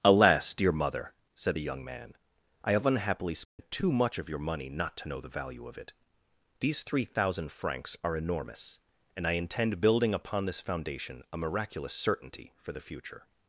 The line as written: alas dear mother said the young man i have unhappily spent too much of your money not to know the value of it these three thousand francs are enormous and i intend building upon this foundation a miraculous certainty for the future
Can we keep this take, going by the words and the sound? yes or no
no